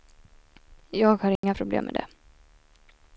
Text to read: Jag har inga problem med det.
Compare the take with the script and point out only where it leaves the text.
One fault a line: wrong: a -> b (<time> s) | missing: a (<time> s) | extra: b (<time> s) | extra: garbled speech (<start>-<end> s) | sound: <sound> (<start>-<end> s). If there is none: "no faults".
sound: dropout (1.4-1.4 s)